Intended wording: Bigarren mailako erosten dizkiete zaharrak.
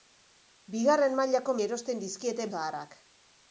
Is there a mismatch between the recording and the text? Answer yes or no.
no